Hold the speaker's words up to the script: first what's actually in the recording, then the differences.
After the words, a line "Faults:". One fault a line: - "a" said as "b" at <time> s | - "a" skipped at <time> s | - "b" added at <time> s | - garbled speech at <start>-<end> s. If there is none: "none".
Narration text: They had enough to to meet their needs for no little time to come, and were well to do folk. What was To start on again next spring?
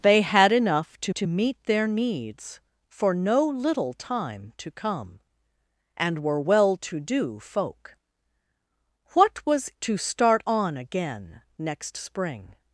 They had enough to to meet their needs for no little time to come, and were well to do folk. What was To start on again next spring?
Faults:
none